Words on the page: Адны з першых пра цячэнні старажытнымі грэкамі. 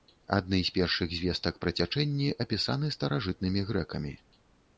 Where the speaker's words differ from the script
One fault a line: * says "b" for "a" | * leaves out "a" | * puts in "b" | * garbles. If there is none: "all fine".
* puts in "звестак"
* puts in "апісаны"